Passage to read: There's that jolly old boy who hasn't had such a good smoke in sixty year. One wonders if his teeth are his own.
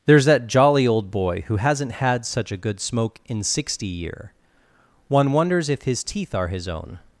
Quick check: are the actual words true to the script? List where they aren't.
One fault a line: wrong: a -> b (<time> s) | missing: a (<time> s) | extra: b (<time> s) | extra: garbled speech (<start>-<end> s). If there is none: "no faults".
no faults